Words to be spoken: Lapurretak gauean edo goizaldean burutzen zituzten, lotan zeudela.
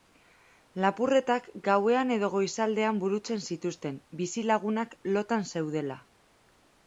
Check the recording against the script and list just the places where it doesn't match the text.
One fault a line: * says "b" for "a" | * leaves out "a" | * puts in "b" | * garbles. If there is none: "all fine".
* puts in "bizilagunak"